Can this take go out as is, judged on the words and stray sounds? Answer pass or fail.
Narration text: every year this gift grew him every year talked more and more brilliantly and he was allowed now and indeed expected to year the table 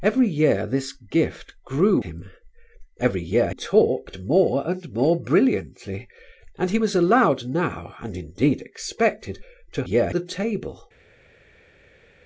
pass